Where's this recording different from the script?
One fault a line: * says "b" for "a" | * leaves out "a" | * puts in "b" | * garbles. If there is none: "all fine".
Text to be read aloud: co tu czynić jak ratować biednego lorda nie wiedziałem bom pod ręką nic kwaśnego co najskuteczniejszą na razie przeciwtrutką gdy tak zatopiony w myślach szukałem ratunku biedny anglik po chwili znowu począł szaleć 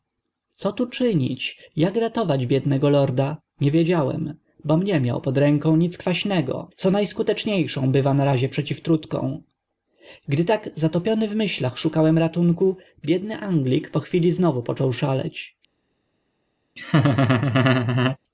* puts in "nie miał"
* puts in "bywa"